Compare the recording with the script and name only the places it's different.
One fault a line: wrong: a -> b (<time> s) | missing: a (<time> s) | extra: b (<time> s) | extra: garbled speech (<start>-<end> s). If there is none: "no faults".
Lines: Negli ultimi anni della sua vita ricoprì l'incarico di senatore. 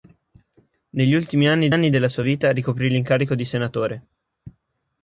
extra: anni (1.7 s)